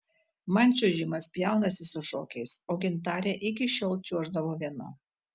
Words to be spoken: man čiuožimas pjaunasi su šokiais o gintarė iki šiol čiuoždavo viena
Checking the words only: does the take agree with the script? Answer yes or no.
yes